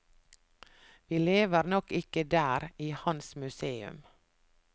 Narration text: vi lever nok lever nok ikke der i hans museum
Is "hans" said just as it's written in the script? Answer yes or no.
yes